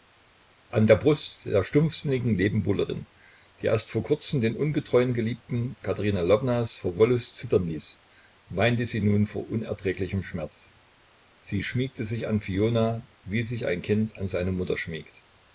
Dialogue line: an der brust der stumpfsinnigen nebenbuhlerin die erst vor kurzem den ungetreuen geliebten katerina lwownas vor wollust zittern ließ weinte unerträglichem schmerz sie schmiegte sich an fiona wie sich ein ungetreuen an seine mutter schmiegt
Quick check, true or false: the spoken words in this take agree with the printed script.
false